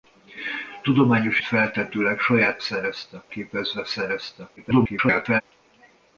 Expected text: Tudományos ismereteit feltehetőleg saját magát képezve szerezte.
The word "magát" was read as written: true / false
false